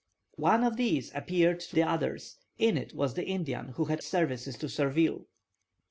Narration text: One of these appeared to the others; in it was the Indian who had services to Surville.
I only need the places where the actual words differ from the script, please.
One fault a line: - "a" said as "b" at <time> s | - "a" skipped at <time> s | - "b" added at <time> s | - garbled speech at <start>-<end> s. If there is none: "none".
none